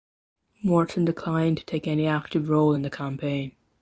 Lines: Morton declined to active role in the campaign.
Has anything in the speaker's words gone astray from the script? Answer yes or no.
yes